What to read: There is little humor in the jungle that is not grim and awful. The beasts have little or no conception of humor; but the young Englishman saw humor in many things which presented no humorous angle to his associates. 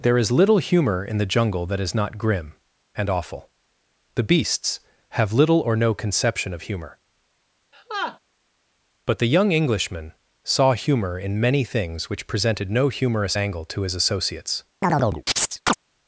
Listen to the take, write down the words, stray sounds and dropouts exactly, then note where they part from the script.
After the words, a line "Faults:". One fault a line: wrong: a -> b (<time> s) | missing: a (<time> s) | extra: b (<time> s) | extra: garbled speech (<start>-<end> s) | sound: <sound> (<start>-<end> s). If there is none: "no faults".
There is little humor in the jungle that is not grim and awful. The beasts have little or no conception of humor; but the young Englishman saw humor in many things which presented no humorous angle to his associates.
Faults:
sound: laugh (7.7-8.2 s)
sound: chirp (14.8-15.8 s)